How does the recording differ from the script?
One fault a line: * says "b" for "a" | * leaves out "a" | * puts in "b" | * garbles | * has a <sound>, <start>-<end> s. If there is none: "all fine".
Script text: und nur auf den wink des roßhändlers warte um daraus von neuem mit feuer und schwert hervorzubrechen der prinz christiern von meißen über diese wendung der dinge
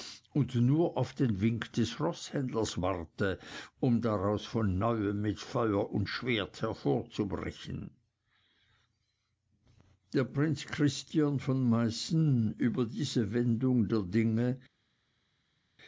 all fine